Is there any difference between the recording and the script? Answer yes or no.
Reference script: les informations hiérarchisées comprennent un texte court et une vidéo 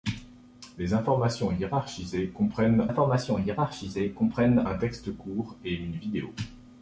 yes